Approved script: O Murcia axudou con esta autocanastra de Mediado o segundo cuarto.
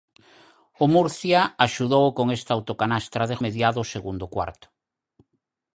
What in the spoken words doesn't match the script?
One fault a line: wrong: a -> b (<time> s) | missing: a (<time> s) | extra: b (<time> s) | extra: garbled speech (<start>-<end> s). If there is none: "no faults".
no faults